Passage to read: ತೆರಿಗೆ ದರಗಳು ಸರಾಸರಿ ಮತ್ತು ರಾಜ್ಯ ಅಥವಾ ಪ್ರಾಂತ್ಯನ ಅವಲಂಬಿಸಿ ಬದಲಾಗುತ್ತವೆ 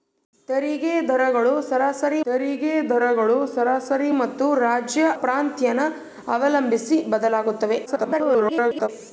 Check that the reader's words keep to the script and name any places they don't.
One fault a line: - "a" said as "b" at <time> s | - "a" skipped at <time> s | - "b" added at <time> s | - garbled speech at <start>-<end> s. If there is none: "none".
- "ತೆರಿಗೆ ದರಗಳು ಸರಾಸರಿ" added at 2.3 s
- "ಅಥವಾ" skipped at 5.0 s
- garbled speech at 7.9-8.9 s